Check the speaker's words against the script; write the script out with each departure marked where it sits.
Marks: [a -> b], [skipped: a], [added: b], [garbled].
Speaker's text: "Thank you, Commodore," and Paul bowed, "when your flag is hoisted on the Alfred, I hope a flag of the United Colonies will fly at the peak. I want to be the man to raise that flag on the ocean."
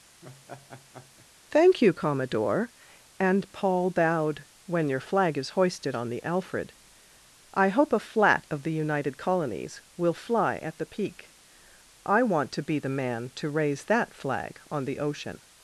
"Thank you, Commodore," and Paul bowed, "when your flag is hoisted on the Alfred, I hope a [flag -> flat] of the United Colonies will fly at the peak. I want to be the man to raise that flag on the ocean."